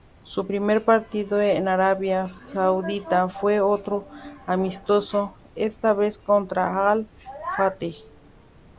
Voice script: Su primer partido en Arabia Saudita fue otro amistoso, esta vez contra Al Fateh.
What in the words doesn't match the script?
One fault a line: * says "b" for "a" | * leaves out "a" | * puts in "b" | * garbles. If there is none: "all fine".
all fine